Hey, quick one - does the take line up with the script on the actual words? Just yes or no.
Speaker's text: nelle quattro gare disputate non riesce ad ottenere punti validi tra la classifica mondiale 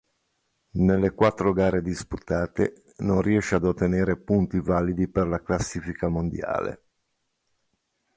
no